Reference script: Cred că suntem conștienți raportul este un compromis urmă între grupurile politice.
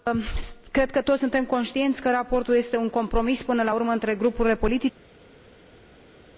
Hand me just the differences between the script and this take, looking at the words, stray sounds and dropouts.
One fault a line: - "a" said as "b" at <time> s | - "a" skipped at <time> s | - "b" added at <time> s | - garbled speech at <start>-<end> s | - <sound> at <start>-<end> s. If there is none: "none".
- "toți" added at 1.0 s
- "că" added at 2.0 s
- "până la" added at 3.4 s